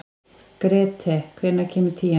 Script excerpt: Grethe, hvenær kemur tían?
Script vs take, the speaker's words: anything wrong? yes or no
no